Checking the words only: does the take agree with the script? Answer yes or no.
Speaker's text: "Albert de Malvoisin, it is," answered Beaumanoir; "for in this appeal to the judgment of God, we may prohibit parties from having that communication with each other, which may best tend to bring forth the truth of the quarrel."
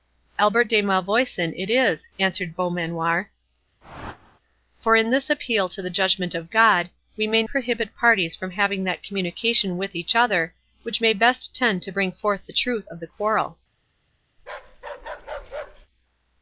yes